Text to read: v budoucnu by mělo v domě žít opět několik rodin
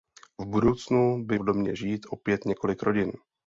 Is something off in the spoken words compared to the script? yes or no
yes